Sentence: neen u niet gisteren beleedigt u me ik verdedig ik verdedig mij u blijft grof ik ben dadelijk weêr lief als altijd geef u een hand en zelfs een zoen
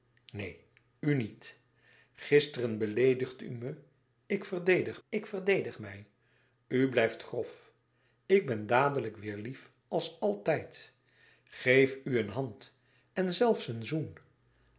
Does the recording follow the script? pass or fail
pass